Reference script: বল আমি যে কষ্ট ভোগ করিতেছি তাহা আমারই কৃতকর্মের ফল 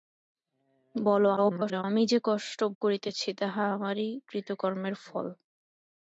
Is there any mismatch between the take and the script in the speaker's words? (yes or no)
yes